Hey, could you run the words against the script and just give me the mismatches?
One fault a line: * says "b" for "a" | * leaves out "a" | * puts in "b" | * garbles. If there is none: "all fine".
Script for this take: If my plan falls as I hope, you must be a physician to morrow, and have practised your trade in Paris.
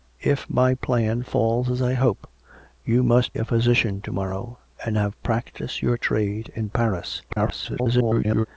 * leaves out "be"
* garbles